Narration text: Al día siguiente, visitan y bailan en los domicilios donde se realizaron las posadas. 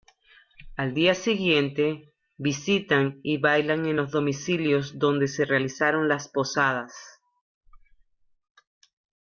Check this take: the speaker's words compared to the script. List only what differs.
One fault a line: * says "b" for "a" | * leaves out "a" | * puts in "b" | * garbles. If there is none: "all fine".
all fine